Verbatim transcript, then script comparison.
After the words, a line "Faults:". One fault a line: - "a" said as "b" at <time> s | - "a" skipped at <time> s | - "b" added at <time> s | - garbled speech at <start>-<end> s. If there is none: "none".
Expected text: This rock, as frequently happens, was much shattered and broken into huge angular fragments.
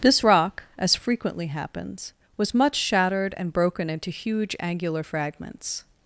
This rock, as frequently happens, was much shattered and broken into huge angular fragments.
Faults:
none